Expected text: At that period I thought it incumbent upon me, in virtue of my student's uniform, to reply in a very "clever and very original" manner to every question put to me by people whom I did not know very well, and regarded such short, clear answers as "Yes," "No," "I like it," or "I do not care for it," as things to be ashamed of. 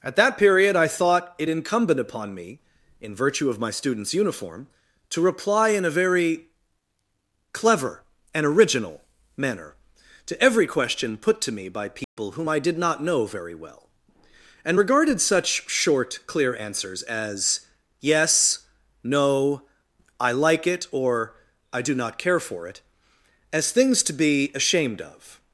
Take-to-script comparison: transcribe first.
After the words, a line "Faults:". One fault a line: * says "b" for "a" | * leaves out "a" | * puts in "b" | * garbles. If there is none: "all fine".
At that period I thought it incumbent upon me, in virtue of my student's uniform, to reply in a very "clever and original" manner to every question put to me by people whom I did not know very well, and regarded such short, clear answers as "Yes," "No," "I like it," or "I do not care for it," as things to be ashamed of.
Faults:
* leaves out "very"